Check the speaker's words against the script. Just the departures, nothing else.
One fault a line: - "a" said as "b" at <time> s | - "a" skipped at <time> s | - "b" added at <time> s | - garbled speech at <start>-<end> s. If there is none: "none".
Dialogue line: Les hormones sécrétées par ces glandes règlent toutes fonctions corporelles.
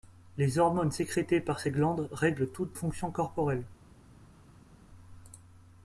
none